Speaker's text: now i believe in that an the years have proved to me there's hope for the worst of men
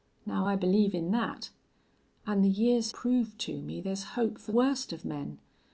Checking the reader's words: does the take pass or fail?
fail